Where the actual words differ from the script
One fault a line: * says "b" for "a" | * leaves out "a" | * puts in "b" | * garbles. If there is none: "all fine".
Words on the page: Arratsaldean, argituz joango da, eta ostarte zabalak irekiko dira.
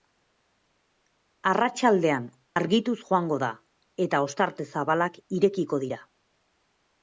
all fine